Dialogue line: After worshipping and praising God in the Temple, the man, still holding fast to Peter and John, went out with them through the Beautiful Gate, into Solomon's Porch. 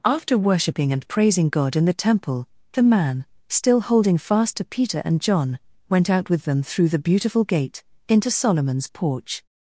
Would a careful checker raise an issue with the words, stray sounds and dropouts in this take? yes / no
no